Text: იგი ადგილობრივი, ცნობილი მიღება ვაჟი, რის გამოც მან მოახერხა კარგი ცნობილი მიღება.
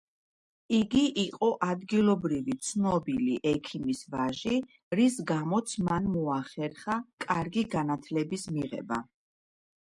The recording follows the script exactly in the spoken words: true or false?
false